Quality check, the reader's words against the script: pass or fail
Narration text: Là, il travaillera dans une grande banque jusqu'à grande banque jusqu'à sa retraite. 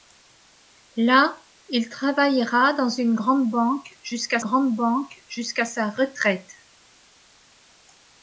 pass